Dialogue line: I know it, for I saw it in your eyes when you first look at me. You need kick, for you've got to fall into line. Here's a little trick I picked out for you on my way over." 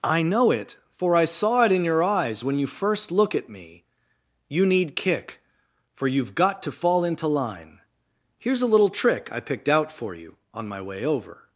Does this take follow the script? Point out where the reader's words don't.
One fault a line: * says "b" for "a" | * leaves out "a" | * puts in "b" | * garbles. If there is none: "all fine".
all fine